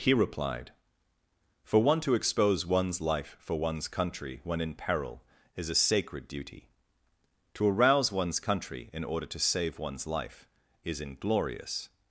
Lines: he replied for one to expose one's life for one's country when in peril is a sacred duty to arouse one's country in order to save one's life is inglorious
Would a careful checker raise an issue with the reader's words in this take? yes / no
no